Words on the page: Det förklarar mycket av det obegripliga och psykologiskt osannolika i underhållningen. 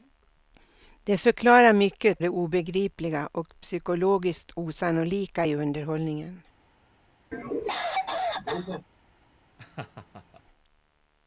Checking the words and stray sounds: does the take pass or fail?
fail